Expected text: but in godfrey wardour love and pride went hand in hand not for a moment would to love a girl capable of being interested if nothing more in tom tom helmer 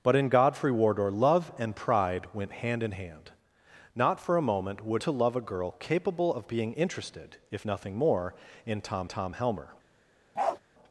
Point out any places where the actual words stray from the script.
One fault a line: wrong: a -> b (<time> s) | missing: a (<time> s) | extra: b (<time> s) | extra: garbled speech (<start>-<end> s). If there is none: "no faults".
no faults